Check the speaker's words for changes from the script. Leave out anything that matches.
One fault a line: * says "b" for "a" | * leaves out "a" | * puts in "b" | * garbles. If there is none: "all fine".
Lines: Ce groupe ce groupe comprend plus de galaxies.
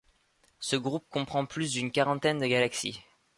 * says "comprend plus d'une quarantaine" for "ce groupe comprend plus"